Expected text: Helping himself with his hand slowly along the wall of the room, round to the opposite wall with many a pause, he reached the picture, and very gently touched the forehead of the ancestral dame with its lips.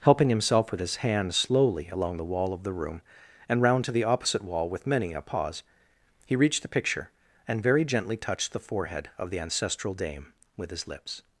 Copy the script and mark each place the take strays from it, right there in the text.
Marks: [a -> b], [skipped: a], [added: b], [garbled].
Helping himself with his hand slowly along the wall of the room, [added: and] round to the opposite wall with many a pause, he reached the picture, and very gently touched the forehead of the ancestral dame with [its -> his] lips.